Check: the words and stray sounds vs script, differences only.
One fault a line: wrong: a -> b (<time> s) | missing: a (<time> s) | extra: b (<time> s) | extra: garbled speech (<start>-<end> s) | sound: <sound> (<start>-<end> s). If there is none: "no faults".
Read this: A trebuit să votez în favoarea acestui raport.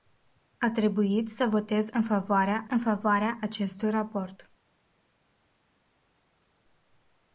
extra: în favoarea (2.7 s)